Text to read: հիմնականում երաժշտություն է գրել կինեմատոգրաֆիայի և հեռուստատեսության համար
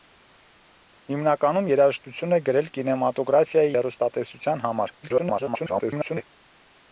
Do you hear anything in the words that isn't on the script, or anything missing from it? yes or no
yes